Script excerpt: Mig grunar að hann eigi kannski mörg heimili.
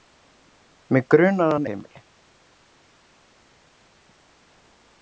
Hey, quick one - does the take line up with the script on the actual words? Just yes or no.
no